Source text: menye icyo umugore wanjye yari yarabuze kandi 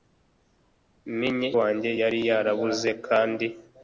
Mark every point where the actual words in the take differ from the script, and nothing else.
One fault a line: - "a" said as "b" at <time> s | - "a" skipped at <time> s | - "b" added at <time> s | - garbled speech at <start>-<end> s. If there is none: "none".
- "icyo umugore" skipped at 1.5 s